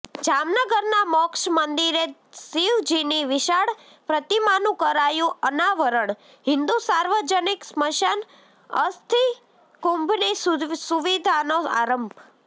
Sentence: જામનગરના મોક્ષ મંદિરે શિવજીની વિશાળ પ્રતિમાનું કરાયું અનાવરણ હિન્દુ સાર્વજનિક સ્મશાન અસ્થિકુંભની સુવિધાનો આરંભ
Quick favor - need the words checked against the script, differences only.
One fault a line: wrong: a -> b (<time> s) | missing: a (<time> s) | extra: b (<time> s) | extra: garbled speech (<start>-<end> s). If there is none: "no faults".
no faults